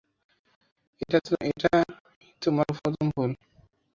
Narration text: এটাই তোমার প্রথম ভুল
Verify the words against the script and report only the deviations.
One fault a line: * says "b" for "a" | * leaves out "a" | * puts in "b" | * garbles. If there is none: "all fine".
all fine